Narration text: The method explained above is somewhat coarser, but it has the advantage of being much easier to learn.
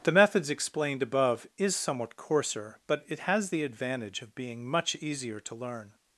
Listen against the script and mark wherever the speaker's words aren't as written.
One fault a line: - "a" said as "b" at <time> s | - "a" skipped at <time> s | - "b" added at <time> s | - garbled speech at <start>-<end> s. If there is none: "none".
- "method" said as "methods" at 0.1 s